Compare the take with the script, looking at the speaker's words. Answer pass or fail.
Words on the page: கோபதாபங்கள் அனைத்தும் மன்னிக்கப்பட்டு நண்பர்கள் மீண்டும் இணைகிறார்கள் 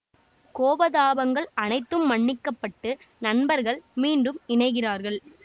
pass